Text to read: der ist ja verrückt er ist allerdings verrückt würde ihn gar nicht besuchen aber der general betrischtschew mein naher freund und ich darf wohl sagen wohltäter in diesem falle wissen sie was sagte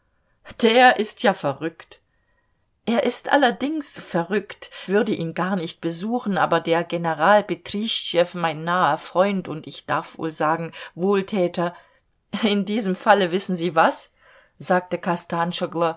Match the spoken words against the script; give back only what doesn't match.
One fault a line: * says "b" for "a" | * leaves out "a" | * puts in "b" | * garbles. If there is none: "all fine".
all fine